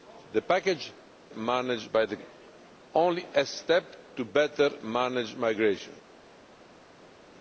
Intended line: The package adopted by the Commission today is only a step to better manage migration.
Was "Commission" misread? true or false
true